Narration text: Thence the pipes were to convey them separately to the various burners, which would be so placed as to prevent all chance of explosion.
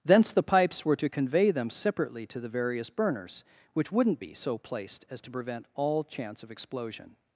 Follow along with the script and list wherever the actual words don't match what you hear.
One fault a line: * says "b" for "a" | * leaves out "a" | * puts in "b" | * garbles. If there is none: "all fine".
* says "wouldn't" for "would"